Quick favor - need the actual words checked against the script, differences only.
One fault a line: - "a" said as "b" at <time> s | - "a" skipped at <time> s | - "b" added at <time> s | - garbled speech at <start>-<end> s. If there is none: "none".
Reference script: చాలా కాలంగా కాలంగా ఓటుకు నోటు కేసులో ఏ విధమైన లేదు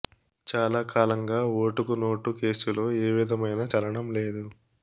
- "కాలంగా" skipped at 1.4 s
- "చలనం" added at 3.7 s